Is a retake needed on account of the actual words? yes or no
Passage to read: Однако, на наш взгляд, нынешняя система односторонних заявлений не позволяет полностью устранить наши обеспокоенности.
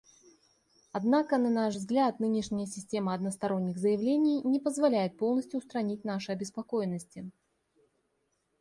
no